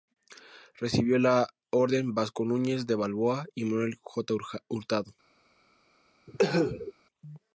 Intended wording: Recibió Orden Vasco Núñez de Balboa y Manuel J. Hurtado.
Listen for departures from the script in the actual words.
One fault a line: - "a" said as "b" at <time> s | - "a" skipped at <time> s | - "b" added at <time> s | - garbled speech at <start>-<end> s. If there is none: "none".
- "la" added at 1.2 s